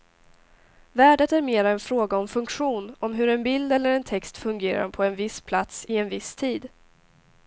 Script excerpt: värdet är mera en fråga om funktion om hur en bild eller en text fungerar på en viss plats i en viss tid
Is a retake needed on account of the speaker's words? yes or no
no